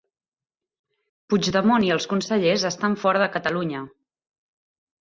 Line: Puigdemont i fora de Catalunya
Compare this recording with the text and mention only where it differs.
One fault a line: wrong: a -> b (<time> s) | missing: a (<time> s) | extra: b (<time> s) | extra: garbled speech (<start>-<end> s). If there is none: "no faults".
extra: els consellers estan (2.0 s)